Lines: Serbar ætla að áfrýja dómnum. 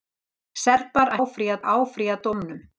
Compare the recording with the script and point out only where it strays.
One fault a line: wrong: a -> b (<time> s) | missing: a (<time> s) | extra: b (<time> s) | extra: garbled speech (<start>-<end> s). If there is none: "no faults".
wrong: ætla -> áfrýja (1.3 s)